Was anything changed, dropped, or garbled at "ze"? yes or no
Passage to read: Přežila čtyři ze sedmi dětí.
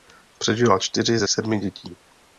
no